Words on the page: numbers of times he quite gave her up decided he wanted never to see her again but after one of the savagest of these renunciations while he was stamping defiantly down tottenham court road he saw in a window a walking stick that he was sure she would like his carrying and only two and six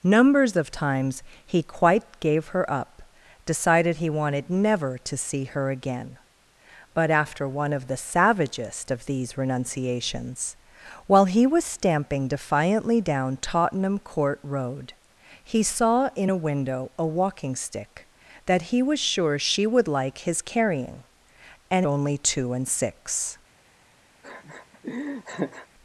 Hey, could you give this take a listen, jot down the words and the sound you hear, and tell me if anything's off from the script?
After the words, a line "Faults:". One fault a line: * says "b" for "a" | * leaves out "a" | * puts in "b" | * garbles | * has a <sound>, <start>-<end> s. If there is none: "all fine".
numbers of times he quite gave her up decided he wanted never to see her again but after one of the savagest of these renunciations while he was stamping defiantly down tottenham court road he saw in a window a walking stick that he was sure she would like his carrying and only two and six
Faults:
* has a laugh, 24.2-25.7 s